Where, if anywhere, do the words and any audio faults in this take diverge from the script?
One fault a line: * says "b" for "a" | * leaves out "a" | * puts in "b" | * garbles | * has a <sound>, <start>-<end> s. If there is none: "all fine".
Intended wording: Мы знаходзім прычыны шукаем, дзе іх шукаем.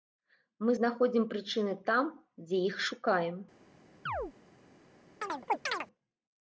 * says "там" for "шукаем"
* has a chirp, 4.1-4.3 s
* has a chirp, 5.2-5.9 s